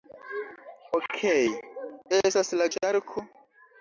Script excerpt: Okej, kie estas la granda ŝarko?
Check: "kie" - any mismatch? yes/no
yes